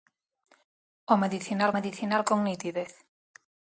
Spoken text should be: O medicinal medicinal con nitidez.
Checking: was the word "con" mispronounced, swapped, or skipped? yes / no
no